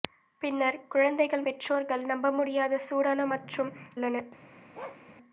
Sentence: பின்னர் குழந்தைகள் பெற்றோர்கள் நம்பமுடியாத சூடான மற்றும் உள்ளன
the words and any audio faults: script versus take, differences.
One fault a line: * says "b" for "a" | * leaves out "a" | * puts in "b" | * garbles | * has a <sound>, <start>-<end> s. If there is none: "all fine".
* has a bark, 4.7-5.0 s